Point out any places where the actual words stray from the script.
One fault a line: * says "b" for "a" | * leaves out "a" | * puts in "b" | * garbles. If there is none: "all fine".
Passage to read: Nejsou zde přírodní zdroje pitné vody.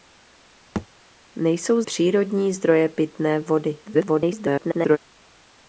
* leaves out "zde"
* garbles